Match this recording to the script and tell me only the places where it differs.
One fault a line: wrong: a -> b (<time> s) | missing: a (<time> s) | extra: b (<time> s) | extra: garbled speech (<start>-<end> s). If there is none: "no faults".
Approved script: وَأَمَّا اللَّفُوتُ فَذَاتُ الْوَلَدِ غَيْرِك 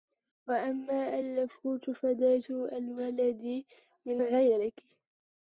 extra: مِنْ (4.0 s)